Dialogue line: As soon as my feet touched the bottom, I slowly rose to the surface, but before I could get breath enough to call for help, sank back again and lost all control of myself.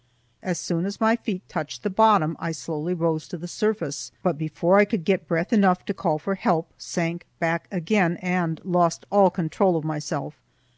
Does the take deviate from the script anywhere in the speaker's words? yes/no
no